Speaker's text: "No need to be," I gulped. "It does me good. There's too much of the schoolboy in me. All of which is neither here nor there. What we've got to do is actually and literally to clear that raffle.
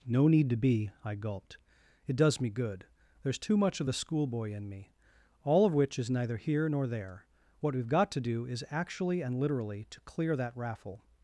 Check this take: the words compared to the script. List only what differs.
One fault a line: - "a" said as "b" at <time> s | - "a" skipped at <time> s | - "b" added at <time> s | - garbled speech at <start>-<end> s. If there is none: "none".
none